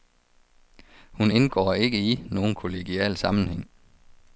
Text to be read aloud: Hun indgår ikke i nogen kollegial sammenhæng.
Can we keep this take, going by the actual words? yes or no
yes